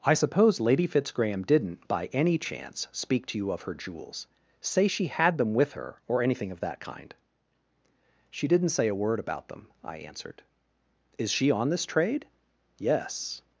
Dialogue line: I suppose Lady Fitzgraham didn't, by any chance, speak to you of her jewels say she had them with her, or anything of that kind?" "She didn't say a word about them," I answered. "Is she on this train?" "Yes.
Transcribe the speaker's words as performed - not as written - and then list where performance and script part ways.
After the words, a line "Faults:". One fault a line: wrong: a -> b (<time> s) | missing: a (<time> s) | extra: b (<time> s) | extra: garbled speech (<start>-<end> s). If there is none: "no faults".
I suppose Lady Fitzgraham didn't, by any chance, speak to you of her jewels say she had them with her, or anything of that kind?" "She didn't say a word about them," I answered. "Is she on this trade?" "Yes.
Faults:
wrong: train -> trade (11.8 s)